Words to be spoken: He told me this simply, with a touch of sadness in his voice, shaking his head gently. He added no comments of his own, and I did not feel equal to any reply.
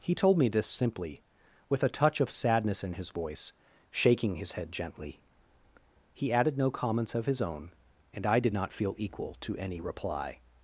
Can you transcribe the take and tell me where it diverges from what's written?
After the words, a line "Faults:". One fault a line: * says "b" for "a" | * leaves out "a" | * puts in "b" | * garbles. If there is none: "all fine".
He told me this simply, with a touch of sadness in his voice, shaking his head gently. He added no comments of his own, and I did not feel equal to any reply.
Faults:
all fine